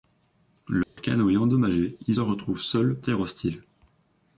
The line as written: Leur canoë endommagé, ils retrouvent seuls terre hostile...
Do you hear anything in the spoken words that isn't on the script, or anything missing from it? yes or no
no